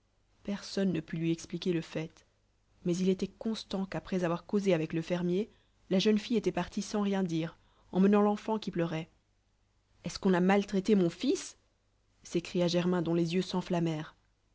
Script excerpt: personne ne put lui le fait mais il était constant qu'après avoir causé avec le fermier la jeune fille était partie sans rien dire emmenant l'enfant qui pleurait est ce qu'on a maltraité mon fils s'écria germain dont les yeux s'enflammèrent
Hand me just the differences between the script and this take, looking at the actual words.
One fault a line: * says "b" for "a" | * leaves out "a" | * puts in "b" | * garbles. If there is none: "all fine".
* puts in "expliquer"